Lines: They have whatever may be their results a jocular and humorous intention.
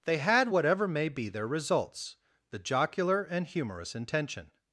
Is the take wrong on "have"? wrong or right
wrong